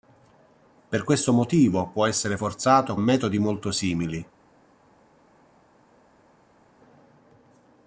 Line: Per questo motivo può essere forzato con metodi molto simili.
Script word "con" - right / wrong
wrong